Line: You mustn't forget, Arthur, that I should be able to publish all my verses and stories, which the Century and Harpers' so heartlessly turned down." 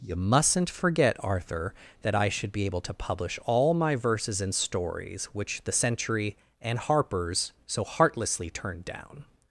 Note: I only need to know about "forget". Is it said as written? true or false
true